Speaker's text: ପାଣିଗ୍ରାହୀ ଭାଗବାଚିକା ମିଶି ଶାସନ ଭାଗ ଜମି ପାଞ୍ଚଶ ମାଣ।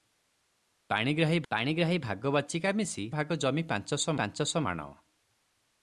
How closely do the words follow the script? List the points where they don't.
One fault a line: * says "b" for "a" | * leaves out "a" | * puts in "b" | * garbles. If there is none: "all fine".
* puts in "ପାଣିଗ୍ରାହୀ"
* leaves out "ଶାସନ"
* puts in "ପାଞ୍ଚଶ"